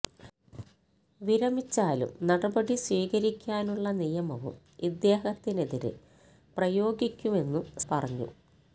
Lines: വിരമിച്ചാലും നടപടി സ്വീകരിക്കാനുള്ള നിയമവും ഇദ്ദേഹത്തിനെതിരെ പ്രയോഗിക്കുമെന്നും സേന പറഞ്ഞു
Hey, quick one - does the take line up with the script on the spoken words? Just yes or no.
no